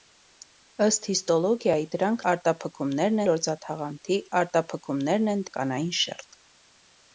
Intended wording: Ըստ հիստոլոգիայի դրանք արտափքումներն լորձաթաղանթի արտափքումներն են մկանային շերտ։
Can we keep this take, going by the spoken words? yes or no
yes